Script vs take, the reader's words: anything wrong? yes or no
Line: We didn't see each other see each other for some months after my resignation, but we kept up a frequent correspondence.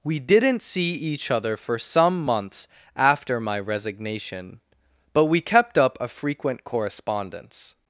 yes